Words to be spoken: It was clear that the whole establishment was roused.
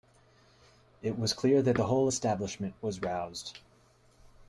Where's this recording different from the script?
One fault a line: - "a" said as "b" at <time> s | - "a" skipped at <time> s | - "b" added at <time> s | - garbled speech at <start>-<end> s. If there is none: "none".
none